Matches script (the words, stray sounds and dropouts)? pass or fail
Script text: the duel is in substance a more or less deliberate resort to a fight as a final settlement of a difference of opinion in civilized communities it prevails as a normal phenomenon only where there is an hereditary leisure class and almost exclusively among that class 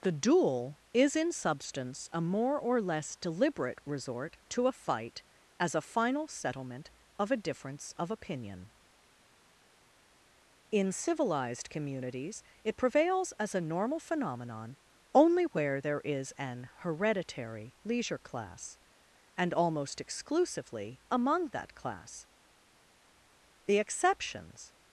fail